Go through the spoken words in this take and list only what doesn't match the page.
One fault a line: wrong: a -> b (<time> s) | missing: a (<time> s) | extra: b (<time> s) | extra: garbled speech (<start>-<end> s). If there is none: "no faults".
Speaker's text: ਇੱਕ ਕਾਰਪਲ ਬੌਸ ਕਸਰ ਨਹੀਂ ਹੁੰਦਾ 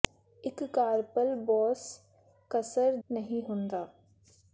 no faults